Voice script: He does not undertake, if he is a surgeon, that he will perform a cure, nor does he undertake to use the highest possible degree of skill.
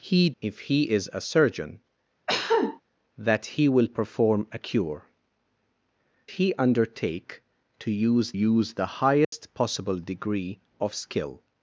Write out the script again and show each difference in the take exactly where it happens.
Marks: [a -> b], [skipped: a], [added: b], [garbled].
He [skipped: does not undertake,] if he is a surgeon, that he will perform a cure, [skipped: nor does] he undertake to use [added: use] the highest possible degree of skill.